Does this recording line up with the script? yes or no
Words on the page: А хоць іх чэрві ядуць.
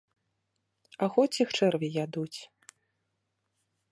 yes